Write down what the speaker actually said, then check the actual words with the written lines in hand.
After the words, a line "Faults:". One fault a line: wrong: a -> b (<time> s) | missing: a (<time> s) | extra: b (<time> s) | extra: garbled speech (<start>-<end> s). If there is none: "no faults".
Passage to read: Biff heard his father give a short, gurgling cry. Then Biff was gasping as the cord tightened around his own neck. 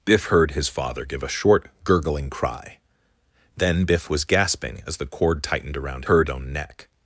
Biff heard his father give a short, gurgling cry. Then Biff was gasping as the cord tightened around heard own neck.
Faults:
wrong: his -> heard (6.0 s)